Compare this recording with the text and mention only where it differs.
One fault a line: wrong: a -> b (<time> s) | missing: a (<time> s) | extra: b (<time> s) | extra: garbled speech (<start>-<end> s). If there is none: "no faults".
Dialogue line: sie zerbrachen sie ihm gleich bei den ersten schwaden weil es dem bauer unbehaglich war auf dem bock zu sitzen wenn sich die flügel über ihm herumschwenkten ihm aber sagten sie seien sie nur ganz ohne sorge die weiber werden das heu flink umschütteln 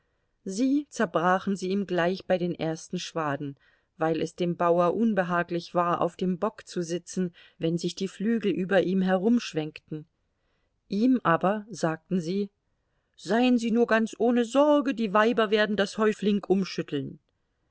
no faults